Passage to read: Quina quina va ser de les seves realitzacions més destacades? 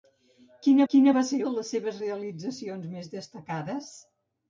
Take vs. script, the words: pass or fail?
pass